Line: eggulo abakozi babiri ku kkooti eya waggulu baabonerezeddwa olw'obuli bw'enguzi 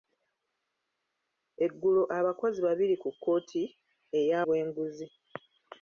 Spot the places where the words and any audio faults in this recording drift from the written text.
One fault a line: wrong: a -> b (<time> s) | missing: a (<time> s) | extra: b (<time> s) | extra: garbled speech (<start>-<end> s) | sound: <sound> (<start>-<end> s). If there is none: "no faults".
missing: waggulu baabonerezeddwa olw'obuli (4.4 s)